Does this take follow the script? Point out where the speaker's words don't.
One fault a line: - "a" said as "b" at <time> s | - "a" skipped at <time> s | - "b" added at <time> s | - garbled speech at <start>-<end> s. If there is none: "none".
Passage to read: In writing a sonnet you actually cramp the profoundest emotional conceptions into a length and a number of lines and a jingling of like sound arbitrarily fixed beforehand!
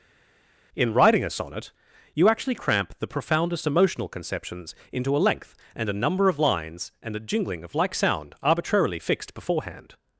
none